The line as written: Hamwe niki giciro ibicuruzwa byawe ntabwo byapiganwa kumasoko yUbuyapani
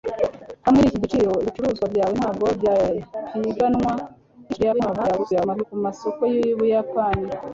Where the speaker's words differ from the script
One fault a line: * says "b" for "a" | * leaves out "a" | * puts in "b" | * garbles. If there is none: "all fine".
* garbles